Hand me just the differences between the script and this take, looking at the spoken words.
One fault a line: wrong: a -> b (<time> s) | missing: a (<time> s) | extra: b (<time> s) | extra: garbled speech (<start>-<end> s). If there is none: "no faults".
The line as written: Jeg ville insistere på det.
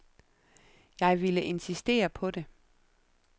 no faults